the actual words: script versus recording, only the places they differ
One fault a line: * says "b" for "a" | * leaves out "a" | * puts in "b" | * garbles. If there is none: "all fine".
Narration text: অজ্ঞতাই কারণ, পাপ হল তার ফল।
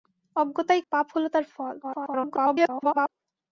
* leaves out "কারণ"
* garbles